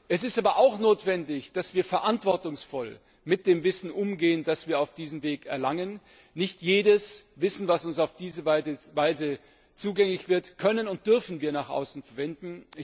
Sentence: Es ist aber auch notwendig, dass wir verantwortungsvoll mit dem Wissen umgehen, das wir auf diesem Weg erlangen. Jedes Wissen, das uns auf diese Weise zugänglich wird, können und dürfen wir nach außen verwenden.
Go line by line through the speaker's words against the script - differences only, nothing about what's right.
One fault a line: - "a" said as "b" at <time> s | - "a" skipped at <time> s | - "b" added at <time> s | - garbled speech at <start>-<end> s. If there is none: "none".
- "Nicht" added at 6.3 s